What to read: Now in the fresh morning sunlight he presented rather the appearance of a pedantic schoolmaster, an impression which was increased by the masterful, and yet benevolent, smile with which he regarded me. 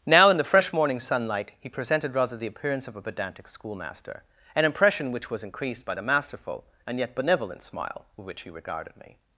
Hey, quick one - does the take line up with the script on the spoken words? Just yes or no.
yes